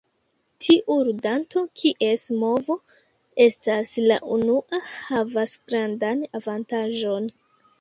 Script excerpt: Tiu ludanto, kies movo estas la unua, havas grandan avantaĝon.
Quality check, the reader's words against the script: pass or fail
pass